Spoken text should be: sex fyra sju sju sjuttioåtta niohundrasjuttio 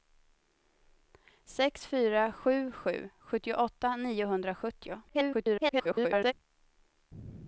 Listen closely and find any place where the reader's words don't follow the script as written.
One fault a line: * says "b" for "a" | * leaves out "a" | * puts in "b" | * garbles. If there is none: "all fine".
* garbles